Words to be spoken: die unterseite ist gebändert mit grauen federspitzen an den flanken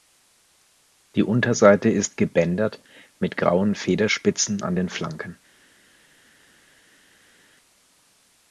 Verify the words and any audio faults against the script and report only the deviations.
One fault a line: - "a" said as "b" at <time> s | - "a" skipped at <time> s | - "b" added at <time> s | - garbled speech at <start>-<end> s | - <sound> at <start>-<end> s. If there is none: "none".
none